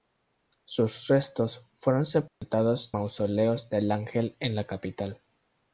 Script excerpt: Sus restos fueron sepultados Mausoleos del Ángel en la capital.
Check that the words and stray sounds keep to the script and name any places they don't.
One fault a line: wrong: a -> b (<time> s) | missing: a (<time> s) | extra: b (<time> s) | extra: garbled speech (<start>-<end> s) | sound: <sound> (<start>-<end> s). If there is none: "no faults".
sound: dropout (2.3-2.4 s)